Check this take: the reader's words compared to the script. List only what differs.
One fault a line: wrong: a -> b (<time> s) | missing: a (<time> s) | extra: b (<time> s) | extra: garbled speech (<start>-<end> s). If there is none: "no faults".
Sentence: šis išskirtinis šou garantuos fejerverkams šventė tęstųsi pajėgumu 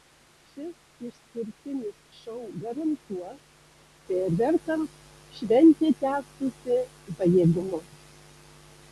no faults